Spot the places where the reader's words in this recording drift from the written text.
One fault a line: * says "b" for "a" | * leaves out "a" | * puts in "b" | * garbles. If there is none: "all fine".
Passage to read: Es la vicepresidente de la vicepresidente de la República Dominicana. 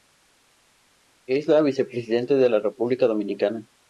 * leaves out "vicepresidente de la"